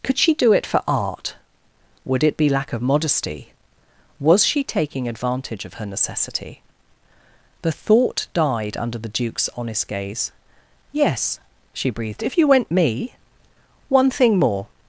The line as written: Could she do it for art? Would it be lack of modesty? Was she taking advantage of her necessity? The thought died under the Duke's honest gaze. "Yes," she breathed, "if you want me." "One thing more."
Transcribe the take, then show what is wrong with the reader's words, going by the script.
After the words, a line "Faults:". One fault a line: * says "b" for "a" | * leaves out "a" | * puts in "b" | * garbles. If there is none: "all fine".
Could she do it for art? Would it be lack of modesty? Was she taking advantage of her necessity? The thought died under the Duke's honest gaze. "Yes," she breathed, "if you went me." "One thing more."
Faults:
* says "went" for "want"